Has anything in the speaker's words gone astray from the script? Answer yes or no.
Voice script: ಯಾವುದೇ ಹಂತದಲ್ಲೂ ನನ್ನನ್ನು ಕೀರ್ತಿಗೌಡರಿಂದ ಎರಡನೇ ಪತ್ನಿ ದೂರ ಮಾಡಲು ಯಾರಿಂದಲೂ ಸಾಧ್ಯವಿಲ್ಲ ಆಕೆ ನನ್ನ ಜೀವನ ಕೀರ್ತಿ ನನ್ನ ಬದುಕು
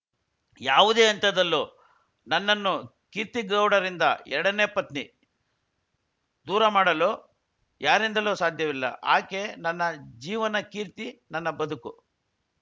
no